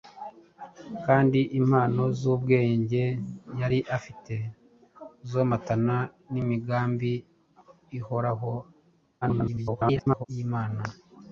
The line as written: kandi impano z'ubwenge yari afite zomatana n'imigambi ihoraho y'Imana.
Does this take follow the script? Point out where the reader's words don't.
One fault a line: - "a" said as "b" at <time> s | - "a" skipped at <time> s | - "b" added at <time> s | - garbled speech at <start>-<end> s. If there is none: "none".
- garbled speech at 9.2-10.3 s